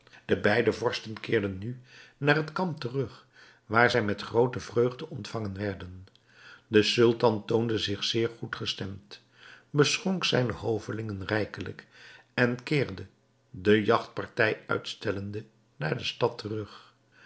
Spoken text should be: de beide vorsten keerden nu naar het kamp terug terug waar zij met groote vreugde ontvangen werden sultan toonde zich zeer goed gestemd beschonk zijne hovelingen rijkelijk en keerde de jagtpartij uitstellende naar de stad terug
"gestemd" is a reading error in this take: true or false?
false